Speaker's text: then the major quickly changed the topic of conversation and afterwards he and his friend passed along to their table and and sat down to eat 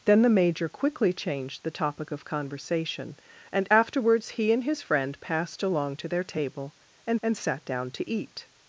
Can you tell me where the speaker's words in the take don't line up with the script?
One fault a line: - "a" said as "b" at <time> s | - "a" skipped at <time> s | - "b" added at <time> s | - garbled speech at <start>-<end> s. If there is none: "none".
none